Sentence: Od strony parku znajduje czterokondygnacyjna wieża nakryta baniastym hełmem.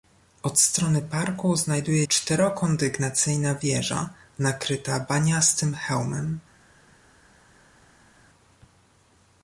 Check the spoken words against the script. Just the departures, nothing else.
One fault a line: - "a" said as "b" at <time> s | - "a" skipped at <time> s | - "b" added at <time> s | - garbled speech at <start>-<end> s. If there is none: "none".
none